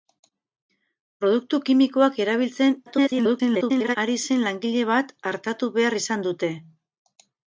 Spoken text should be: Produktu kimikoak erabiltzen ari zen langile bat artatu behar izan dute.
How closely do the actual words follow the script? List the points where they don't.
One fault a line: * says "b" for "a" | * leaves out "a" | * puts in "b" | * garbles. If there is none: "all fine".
* garbles